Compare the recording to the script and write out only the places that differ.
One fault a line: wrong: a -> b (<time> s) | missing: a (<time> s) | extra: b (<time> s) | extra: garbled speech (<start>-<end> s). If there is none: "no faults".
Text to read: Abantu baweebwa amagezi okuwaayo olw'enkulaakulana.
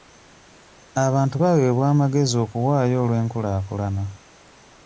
no faults